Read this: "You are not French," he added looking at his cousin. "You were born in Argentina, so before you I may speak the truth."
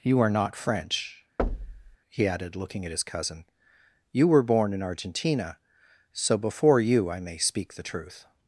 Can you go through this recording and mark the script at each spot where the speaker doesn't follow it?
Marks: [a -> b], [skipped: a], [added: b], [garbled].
"You are not French," he added looking at his cousin. "You were born in Argentina, so before you I may speak the truth."